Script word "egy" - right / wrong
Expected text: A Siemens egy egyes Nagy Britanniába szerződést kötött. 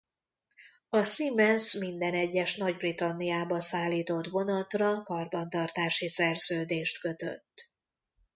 wrong